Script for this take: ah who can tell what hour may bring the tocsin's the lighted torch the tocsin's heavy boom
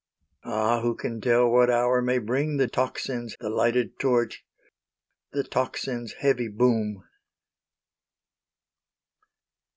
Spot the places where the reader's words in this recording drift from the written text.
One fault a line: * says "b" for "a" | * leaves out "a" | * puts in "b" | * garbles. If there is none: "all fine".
all fine